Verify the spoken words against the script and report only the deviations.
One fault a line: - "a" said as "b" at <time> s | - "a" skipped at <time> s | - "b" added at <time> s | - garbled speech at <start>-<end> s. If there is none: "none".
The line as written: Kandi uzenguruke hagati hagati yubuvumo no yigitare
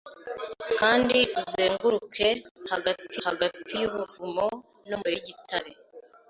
none